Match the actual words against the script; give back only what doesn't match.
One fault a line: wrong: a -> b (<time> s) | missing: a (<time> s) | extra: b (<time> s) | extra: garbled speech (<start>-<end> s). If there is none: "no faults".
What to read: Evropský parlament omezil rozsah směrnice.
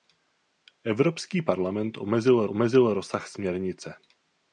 extra: omezil (2.5 s)